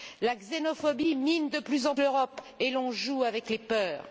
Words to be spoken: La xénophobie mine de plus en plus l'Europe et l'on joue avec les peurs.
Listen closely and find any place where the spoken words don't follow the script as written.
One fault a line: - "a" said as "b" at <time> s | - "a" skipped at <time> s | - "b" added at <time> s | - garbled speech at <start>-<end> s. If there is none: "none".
- "plus" skipped at 1.9 s